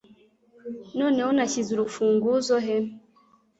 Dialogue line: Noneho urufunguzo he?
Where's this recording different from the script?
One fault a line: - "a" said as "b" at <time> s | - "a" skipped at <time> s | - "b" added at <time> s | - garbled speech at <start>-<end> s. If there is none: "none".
- "nashyize" added at 1.4 s